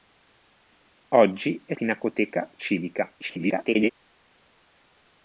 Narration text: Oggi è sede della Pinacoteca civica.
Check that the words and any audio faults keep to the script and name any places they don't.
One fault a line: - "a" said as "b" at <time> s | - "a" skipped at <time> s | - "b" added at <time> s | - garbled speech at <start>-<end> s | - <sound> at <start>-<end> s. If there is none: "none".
- "sede della" skipped at 1.8 s
- garbled speech at 3.2-3.9 s